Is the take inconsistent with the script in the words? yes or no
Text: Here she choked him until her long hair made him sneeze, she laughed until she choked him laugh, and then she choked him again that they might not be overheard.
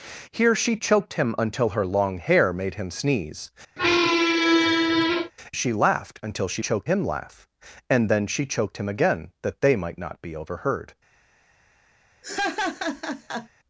no